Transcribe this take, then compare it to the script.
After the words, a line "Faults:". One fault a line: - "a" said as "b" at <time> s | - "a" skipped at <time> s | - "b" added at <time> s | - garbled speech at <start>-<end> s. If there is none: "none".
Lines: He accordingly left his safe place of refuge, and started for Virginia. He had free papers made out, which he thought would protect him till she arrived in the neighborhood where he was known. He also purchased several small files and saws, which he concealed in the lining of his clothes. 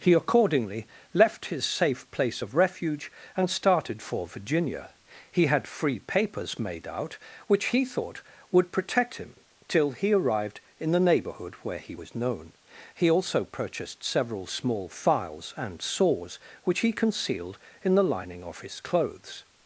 He accordingly left his safe place of refuge, and started for Virginia. He had free papers made out, which he thought would protect him till he arrived in the neighborhood where he was known. He also purchased several small files and saws, which he concealed in the lining of his clothes.
Faults:
- "she" said as "he" at 9.9 s